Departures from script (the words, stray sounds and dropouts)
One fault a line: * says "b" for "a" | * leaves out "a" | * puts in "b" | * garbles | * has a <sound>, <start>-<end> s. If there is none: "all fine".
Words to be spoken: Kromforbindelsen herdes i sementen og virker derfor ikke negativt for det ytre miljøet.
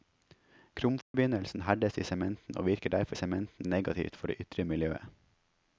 * has a dropout, 1.0-1.1 s
* says "sementen" for "ikke"